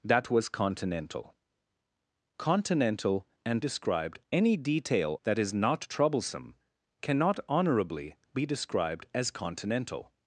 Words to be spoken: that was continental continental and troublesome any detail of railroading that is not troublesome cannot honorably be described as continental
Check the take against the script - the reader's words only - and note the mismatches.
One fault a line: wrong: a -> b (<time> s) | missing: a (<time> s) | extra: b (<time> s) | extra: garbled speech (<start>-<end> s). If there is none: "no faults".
wrong: troublesome -> described (3.6 s)
missing: of railroading (5.2 s)